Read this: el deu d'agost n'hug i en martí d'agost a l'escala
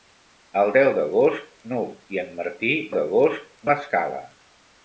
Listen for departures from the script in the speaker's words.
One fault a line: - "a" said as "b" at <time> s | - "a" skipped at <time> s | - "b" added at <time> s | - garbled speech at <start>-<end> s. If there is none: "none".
none